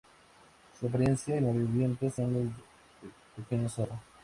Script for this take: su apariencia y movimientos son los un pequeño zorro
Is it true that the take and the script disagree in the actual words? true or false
false